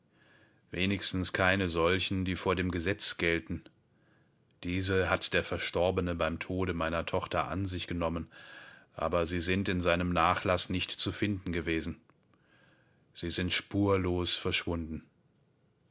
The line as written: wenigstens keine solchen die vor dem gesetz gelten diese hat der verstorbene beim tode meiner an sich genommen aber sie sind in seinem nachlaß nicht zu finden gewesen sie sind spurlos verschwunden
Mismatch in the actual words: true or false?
true